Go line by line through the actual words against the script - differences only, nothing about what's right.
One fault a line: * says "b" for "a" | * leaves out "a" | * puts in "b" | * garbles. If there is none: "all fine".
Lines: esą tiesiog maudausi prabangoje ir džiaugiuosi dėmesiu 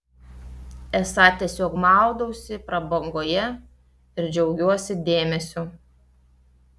all fine